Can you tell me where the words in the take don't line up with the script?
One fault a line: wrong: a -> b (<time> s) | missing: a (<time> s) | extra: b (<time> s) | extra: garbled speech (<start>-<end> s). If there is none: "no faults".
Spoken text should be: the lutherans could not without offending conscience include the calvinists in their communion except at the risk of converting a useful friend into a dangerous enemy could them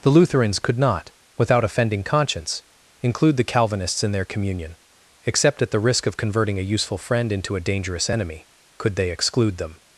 extra: they exclude (8.9 s)